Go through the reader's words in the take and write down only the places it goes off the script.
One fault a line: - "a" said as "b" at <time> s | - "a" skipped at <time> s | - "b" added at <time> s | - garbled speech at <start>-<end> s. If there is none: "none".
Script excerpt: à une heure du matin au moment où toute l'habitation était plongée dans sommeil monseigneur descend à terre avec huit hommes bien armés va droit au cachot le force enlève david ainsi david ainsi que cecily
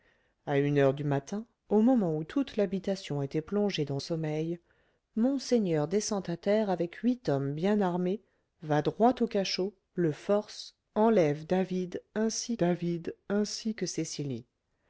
none